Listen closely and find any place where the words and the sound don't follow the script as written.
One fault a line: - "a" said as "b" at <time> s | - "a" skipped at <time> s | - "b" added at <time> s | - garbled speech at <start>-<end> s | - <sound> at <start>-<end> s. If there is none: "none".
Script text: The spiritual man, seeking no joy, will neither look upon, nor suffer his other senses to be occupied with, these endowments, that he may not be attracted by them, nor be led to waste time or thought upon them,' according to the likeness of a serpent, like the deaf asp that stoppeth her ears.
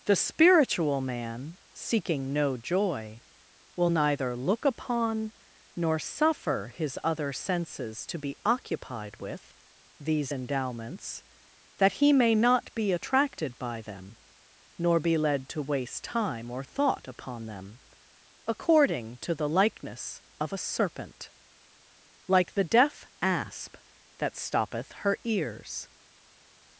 none